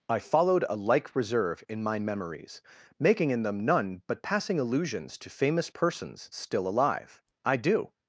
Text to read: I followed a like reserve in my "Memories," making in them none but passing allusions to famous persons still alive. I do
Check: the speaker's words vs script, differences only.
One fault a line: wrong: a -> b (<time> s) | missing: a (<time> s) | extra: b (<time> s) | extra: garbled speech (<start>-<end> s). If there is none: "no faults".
no faults